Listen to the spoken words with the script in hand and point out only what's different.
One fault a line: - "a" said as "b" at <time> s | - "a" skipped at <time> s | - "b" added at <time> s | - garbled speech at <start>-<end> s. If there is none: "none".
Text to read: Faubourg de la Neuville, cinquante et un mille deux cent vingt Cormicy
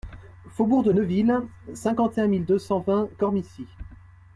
- "la" skipped at 0.9 s